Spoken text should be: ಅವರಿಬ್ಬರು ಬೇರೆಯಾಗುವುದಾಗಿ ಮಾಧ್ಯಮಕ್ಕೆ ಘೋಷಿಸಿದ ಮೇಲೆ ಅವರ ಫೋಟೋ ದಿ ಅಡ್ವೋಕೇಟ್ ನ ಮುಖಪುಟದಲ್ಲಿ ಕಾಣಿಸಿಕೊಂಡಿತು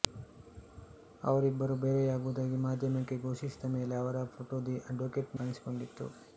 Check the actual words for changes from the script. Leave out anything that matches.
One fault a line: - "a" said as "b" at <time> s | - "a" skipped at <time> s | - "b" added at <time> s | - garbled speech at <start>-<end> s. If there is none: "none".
- "ನ ಮುಖಪುಟದಲ್ಲಿ" skipped at 5.4 s